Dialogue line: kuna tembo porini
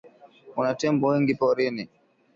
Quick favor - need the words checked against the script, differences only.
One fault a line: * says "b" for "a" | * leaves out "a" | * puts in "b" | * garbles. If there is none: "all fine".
* puts in "wengi"